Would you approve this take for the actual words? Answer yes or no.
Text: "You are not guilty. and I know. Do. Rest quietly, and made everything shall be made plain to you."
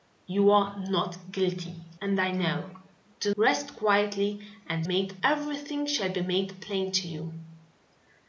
yes